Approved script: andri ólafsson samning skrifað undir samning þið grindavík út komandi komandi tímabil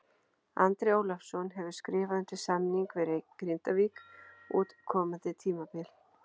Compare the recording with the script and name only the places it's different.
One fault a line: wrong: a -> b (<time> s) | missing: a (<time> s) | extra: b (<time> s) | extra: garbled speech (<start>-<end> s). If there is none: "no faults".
wrong: samning -> hefur (1.6 s)
wrong: þið -> við (3.0 s)
missing: komandi (5.3 s)